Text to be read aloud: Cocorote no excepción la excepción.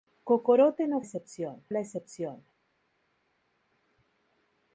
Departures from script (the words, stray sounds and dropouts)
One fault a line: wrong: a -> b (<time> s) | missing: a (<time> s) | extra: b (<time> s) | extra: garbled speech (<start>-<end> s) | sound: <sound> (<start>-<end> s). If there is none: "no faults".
no faults